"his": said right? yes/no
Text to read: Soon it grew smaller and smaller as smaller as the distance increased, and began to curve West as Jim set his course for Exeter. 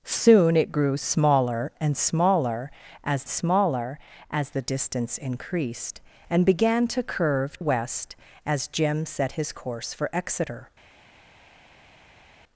yes